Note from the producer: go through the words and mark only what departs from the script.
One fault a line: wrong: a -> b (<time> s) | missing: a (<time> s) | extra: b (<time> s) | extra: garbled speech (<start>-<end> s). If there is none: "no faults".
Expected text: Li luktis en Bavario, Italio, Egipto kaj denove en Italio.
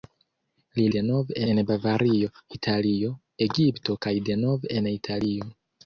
wrong: luktis -> denove (1.0 s)